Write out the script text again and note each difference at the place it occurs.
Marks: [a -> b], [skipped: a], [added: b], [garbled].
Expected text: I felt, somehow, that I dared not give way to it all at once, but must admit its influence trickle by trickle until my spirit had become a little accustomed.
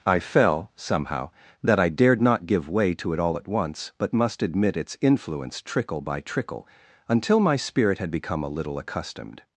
I [felt, -> fell] somehow, that I dared not give way to it all at once, but must admit its influence trickle by trickle until my spirit had become a little accustomed.